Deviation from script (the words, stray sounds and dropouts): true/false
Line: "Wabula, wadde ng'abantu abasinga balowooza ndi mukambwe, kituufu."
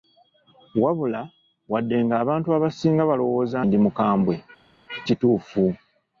false